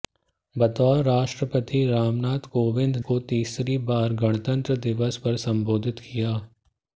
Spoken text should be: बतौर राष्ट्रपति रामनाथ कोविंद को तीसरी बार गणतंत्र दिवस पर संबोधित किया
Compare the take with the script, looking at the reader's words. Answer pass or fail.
pass